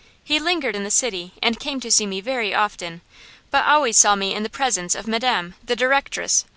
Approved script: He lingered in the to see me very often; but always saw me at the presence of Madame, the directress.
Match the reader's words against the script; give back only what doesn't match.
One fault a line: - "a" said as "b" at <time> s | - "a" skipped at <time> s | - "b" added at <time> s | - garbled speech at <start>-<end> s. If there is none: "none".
- "city and came" added at 0.9 s
- "at" said as "in" at 4.3 s